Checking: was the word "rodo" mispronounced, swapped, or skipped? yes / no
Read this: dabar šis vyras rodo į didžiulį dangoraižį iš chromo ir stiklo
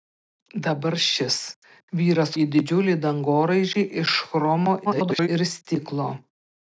yes